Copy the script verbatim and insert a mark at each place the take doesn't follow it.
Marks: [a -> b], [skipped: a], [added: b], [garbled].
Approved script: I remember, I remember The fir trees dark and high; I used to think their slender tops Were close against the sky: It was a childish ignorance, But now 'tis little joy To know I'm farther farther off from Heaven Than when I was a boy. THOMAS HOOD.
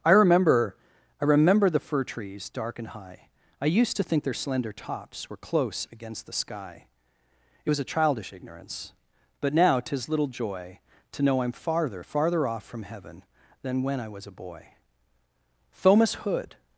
I remember, I remember The fir trees dark and high; I used to think their slender tops Were close against the sky: It was a childish ignorance, But now 'tis little joy To know I'm farther farther off from Heaven Than when I was a boy. THOMAS HOOD.